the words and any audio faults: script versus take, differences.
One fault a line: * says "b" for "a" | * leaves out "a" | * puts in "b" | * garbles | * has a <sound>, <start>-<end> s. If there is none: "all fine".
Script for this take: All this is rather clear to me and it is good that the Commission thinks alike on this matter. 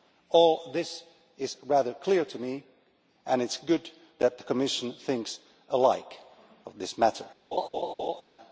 * has a laugh, 7.5-8.2 s